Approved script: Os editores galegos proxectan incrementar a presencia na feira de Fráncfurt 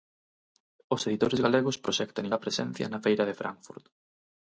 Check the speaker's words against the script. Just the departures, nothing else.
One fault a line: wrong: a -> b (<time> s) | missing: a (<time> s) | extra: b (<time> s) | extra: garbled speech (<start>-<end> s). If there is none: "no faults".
missing: incrementar (2.3 s)